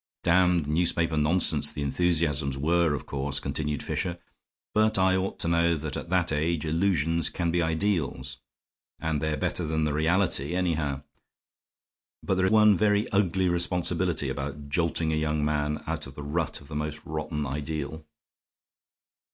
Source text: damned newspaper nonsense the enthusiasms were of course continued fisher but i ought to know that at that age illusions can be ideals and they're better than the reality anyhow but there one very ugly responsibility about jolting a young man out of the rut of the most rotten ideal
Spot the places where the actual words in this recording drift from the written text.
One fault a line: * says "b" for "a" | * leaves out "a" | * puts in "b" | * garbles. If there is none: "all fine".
all fine